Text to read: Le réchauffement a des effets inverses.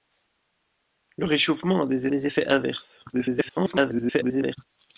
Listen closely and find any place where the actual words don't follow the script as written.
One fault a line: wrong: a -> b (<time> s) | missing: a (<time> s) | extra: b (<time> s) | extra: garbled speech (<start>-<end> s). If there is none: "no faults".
extra: des (2.1 s)
extra: garbled speech (3.1-4.6 s)